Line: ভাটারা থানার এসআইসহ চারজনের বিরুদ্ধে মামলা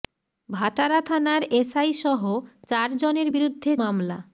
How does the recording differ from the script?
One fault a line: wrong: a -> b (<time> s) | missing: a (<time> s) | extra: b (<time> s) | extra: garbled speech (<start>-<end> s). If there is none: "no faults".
no faults